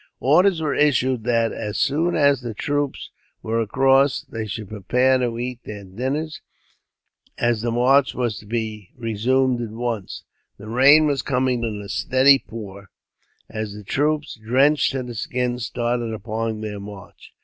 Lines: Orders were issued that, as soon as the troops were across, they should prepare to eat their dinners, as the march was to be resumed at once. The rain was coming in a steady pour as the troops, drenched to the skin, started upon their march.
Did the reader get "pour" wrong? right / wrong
right